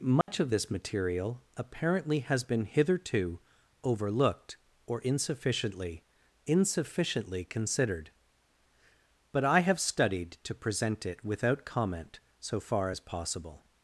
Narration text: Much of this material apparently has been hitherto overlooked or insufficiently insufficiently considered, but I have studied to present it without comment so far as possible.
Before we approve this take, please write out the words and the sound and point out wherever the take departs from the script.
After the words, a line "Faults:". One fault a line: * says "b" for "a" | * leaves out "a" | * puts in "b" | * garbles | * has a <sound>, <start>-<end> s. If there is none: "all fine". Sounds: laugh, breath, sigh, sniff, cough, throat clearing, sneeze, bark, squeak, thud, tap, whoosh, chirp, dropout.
Much of this material apparently has been hitherto overlooked or insufficiently insufficiently considered, but I have studied to present it without comment so far as possible.
Faults:
* has a dropout, 0.2-0.3 s